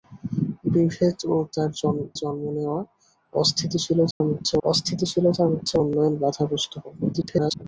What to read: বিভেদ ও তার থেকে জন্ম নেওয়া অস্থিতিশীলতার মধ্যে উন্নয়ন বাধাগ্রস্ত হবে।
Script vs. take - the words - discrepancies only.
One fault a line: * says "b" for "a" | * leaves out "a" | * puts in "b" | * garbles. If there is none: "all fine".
* leaves out "থেকে"
* puts in "অস্থিতিশীলতার মধ্যে"
* garbles